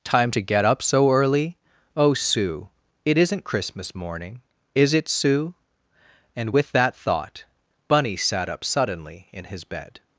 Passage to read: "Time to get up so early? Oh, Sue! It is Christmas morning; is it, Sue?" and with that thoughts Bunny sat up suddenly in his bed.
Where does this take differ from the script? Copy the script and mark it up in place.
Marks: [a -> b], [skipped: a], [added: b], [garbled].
"Time to get up so early? Oh, Sue! It [is -> isn't] Christmas morning; is it, Sue?" and with that [thoughts -> thought] Bunny sat up suddenly in his bed.